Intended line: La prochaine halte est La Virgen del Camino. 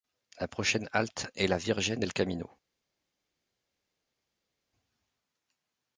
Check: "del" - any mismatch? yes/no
no